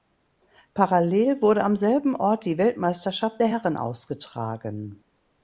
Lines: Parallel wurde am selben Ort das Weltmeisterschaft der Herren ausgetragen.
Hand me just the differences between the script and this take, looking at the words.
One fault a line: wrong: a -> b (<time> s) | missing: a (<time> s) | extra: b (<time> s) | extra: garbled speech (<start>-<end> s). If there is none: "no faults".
wrong: das -> die (2.5 s)